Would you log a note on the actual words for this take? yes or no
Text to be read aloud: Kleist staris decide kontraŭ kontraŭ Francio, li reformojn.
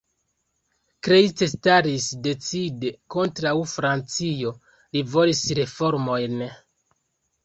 yes